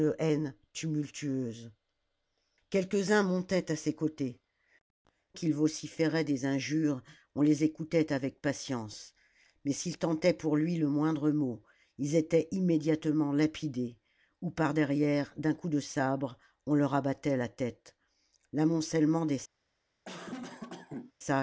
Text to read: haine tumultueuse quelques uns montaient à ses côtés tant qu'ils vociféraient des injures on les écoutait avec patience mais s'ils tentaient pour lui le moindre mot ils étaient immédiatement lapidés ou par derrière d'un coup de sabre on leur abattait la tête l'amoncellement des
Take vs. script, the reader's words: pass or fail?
fail